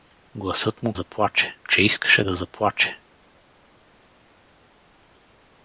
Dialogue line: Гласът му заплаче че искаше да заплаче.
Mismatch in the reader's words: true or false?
false